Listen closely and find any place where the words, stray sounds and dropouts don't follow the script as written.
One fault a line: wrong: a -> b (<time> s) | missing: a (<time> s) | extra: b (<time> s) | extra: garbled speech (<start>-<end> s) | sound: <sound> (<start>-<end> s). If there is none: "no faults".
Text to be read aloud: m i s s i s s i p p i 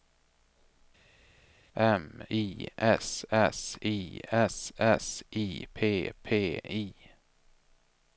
no faults